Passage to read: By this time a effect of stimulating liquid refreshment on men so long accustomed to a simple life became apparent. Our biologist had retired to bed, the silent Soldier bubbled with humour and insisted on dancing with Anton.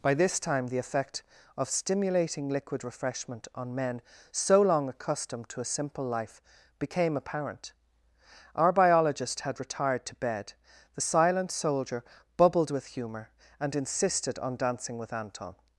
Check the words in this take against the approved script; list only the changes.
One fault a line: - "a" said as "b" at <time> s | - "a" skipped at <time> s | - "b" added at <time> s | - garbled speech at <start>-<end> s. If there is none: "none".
- "a" said as "the" at 0.7 s